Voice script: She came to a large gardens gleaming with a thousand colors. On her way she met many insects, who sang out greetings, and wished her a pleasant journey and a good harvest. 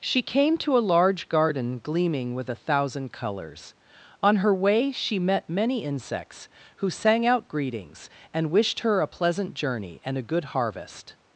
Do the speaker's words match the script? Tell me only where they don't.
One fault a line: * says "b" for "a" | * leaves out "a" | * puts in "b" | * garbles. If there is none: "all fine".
* says "garden" for "gardens"